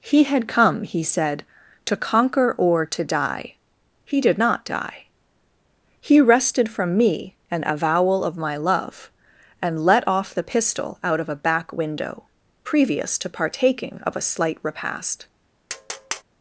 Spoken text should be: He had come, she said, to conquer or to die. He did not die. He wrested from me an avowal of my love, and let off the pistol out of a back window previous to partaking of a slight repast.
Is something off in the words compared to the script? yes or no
yes